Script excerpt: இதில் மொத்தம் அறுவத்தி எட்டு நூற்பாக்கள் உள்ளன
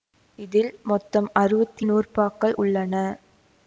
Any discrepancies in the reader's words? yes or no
yes